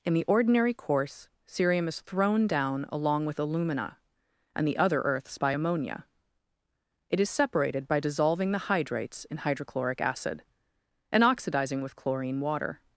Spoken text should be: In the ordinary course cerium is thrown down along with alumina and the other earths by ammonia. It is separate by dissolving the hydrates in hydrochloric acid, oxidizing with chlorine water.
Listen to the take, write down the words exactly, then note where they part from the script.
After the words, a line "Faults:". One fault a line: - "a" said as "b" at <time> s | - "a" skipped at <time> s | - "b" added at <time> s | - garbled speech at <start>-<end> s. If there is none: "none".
In the ordinary course cerium is thrown down along with alumina and the other earths by ammonia. It is separated by dissolving the hydrates in hydrochloric acid, and oxidizing with chlorine water.
Faults:
- "separate" said as "separated" at 7.3 s
- "and" added at 11.1 s